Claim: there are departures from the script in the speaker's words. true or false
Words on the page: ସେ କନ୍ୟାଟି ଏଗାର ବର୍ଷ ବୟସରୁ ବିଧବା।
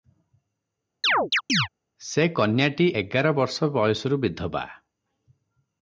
false